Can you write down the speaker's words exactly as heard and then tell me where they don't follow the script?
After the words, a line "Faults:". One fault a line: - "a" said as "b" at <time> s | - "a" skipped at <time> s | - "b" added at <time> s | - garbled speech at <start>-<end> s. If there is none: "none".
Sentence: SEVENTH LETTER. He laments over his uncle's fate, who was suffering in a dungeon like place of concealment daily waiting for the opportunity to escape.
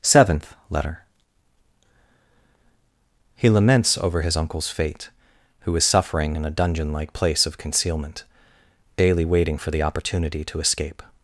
SEVENTH LETTER. He laments over his uncle's fate, who is suffering in a dungeon like place of concealment daily waiting for the opportunity to escape.
Faults:
- "was" said as "is" at 5.8 s